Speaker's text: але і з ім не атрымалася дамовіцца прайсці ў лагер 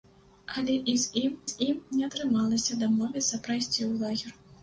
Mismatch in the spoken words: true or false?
true